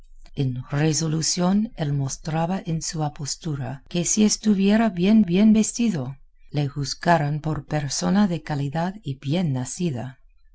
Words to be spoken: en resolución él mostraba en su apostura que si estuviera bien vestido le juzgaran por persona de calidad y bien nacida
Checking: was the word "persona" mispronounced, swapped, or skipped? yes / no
no